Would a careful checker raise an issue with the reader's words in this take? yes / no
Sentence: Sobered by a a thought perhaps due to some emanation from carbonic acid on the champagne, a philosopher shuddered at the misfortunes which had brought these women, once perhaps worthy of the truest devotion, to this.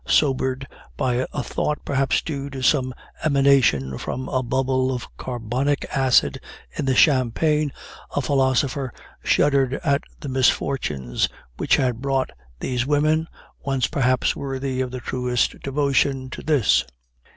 yes